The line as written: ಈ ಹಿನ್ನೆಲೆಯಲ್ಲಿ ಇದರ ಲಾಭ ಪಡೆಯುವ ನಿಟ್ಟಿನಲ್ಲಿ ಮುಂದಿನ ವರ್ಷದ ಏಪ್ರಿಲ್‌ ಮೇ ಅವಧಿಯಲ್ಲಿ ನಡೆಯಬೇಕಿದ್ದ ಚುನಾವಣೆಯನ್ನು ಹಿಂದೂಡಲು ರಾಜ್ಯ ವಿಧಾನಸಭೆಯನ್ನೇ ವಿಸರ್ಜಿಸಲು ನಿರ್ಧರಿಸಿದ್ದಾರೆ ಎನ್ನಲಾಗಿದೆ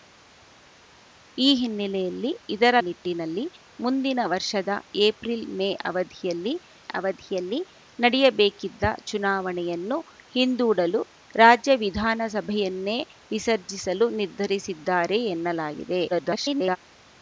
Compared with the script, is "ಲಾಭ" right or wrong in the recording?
wrong